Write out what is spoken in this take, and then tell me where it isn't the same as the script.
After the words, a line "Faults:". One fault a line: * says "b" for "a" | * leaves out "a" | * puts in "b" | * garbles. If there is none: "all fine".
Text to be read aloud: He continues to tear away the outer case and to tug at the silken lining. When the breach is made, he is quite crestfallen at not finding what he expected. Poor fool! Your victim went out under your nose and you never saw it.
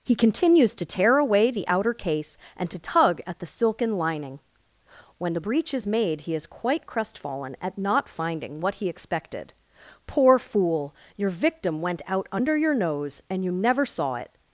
He continues to tear away the outer case and to tug at the silken lining. When the breach is made, he is quite crestfallen at not finding what he expected. Poor fool! Your victim went out under your nose and you never saw it.
Faults:
all fine